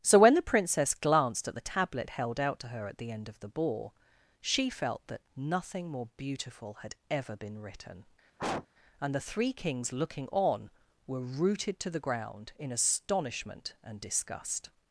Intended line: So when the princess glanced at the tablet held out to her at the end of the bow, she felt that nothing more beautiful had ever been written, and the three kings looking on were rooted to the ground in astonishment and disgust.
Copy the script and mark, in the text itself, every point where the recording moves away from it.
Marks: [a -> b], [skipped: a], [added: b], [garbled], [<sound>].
So when the princess glanced at the tablet held out to her at the end of the [bow, -> ball] she felt that nothing more beautiful had ever been written, [sniff] and the three kings looking on were rooted to the ground in astonishment and disgust.